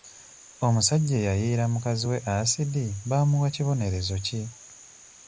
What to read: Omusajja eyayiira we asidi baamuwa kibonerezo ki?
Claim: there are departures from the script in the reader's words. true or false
true